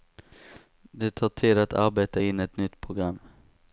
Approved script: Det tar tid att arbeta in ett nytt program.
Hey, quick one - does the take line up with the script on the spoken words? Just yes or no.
yes